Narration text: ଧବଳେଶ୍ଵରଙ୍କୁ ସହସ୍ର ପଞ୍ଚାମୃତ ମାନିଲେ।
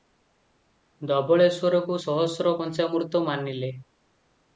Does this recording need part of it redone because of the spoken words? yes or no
no